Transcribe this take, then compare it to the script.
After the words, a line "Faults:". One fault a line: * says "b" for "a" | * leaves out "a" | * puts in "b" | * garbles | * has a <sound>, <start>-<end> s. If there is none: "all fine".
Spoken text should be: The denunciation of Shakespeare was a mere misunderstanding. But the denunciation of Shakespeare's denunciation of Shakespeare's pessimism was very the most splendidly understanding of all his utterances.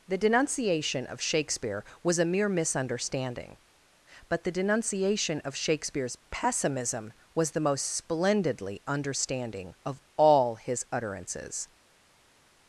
The denunciation of Shakespeare was a mere misunderstanding. But the denunciation of Shakespeare's pessimism was the most splendidly understanding of all his utterances.
Faults:
* leaves out "denunciation of Shakespeare's"
* leaves out "very"